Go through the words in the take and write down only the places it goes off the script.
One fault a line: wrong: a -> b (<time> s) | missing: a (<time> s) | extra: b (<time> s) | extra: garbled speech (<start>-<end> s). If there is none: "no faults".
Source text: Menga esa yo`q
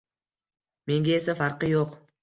extra: farqi (1.4 s)